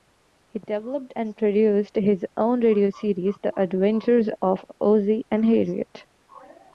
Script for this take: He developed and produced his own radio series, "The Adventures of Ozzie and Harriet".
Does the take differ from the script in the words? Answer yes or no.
no